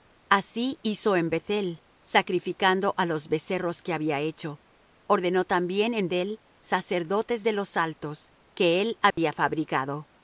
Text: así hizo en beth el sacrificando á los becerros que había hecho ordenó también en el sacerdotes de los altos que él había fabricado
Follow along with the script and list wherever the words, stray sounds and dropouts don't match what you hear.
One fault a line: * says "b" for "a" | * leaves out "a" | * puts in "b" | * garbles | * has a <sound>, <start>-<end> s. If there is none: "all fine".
* has a dropout, 9.1-9.2 s